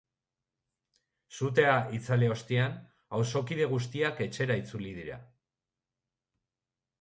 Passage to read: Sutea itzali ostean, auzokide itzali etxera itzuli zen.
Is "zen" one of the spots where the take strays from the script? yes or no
yes